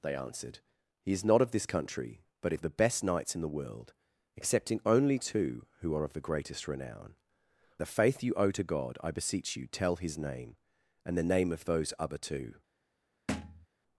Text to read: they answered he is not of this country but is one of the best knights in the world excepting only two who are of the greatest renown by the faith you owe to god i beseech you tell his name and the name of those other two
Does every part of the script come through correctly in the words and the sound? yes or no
no